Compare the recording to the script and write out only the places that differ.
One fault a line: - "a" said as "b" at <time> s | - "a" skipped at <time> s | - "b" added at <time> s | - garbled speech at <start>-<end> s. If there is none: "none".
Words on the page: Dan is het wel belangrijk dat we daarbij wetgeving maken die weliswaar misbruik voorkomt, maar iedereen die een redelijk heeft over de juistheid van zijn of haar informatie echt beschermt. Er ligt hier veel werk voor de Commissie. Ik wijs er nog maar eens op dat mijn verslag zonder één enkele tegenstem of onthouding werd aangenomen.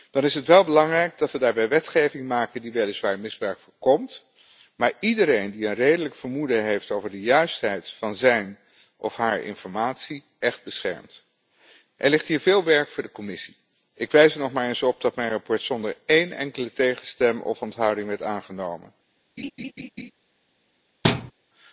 - "vermoeden" added at 6.2 s